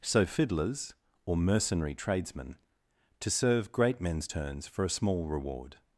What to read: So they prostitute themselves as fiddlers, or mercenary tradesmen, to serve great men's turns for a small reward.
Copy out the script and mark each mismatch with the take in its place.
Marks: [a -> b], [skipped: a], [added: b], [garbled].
So [skipped: they prostitute themselves as] fiddlers, or mercenary tradesmen, to serve great men's turns for a small reward.